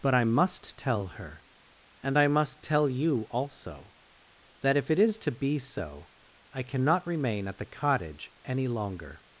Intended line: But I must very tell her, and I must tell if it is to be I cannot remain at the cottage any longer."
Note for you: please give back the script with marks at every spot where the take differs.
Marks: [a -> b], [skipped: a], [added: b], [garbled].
But I must [skipped: very] tell her, and I must tell [added: you also that] if it is to be [added: so] I cannot remain at the cottage any longer."